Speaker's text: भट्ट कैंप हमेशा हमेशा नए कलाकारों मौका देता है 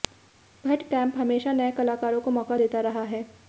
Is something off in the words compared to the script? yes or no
yes